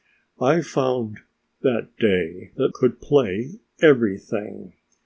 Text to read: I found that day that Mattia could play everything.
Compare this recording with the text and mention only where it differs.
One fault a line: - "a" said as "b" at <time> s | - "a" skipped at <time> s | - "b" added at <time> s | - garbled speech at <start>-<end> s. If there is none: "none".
- "Mattia" skipped at 2.7 s